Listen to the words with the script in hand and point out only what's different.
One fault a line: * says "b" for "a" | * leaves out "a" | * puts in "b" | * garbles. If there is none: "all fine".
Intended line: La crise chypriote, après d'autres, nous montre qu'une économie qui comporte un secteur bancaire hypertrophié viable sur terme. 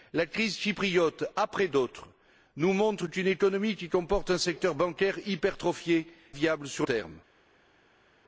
all fine